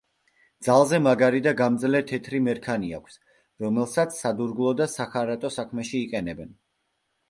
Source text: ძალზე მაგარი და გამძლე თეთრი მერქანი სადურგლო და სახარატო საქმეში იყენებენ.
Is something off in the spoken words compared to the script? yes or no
yes